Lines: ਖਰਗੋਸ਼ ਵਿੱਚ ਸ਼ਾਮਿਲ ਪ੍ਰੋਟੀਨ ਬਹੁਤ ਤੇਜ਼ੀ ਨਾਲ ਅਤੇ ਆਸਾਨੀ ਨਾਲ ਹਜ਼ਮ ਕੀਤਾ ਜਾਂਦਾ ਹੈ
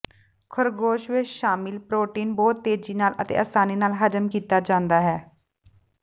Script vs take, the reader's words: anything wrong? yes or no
no